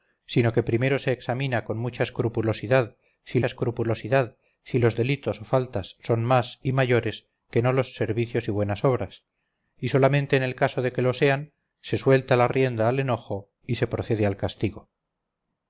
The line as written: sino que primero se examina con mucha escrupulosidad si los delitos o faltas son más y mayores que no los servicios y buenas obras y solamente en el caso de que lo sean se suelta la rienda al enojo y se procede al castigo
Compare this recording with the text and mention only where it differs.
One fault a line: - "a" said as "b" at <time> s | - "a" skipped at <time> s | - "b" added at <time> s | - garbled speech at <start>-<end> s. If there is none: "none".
- "escrupulosidad si" added at 3.4 s